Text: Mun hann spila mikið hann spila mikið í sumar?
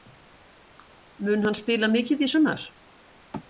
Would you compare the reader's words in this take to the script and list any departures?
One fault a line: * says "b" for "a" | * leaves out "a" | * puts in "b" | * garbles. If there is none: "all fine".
* leaves out "hann spila mikið"